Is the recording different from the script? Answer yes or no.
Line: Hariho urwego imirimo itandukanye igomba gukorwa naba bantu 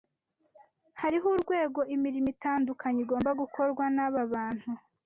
no